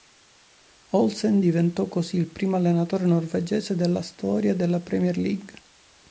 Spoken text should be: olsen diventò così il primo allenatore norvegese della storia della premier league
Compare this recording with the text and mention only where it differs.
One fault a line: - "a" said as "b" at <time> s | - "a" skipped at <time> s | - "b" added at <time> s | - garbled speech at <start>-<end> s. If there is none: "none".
none